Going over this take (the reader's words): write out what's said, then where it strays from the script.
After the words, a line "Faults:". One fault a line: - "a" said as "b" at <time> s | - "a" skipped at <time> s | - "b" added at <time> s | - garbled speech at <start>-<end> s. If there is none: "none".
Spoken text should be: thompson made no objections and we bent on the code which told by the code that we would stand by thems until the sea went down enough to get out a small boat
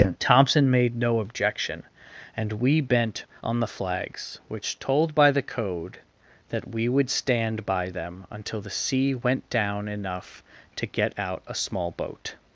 thompson made no objection and we bent on the flags which told by the code that we would stand by them until the sea went down enough to get out a small boat
Faults:
- "objections" said as "objection" at 1.2 s
- "code" said as "flags" at 3.7 s
- "thems" said as "them" at 7.9 s